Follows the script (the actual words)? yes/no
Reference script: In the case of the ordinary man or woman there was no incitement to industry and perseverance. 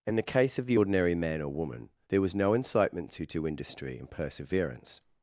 no